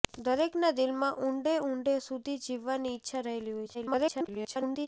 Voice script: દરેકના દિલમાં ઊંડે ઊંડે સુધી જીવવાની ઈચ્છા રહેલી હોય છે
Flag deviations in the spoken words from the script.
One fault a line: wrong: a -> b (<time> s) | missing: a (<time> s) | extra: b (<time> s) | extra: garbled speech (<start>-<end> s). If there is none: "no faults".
extra: garbled speech (3.7-4.9 s)